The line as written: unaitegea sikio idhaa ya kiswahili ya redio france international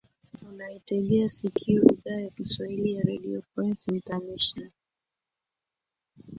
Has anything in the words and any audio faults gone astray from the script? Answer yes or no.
no